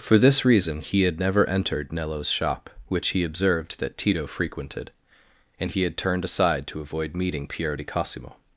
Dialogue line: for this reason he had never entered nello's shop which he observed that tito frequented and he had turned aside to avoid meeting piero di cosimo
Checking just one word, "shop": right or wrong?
right